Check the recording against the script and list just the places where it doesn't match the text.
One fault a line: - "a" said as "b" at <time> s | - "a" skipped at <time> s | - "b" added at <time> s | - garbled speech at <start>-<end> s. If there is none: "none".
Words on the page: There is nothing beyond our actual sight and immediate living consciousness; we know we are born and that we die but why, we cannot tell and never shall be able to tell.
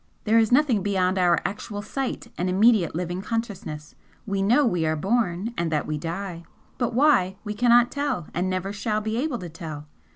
none